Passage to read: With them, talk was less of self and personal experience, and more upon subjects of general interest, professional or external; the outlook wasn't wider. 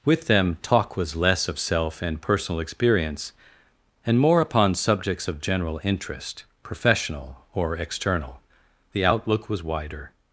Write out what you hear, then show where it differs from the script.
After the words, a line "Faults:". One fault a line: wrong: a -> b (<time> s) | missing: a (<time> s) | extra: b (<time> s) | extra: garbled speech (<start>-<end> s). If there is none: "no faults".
With them, talk was less of self and personal experience, and more upon subjects of general interest, professional or external; the outlook was wider.
Faults:
wrong: wasn't -> was (9.5 s)